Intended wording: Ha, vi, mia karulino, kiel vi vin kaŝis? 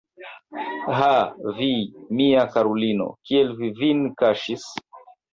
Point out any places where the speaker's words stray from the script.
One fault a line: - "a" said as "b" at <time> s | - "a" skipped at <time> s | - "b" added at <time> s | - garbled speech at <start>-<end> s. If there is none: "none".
none